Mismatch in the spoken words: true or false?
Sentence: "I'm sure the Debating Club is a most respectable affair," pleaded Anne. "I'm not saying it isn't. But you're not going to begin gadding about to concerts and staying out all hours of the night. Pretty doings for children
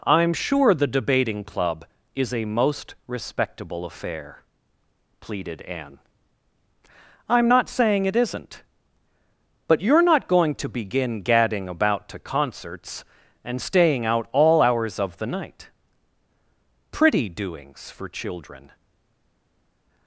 false